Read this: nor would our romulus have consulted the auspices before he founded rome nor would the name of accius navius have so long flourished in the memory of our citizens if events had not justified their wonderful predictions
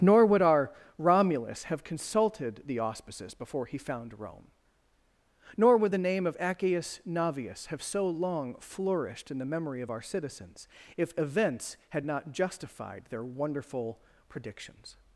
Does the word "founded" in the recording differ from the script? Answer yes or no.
yes